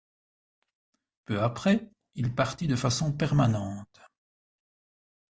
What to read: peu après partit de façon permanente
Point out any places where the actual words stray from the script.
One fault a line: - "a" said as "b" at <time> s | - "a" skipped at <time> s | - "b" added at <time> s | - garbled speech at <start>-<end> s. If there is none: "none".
- "il" added at 2.1 s